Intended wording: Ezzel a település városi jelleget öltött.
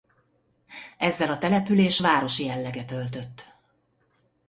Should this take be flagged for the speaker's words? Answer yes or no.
no